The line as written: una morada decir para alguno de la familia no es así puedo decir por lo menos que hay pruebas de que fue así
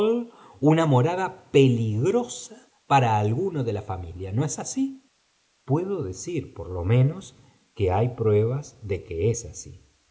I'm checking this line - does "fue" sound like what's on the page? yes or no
no